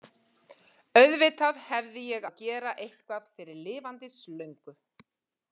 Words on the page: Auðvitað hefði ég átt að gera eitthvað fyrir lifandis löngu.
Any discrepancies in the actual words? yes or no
yes